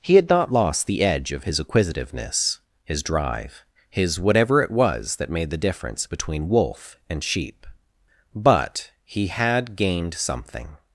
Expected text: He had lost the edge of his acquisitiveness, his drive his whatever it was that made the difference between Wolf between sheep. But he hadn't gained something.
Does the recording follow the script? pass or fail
fail